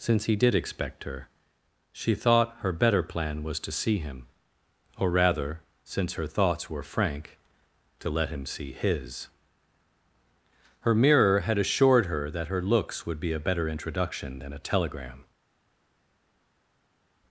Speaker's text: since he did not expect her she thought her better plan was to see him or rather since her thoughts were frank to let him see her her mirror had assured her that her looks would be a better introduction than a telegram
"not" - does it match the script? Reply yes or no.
no